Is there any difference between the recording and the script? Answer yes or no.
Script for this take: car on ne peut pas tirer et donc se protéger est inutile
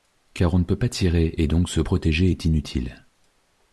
no